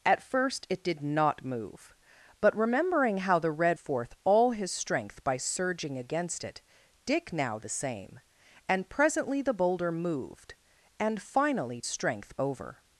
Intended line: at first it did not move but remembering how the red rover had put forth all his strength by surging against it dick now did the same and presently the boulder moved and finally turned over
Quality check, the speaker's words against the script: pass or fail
fail